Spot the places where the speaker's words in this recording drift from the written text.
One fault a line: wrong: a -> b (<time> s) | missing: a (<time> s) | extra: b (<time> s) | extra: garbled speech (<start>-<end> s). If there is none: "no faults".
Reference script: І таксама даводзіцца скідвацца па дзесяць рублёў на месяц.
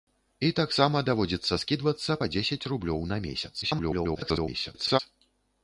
extra: garbled speech (3.6-5.0 s)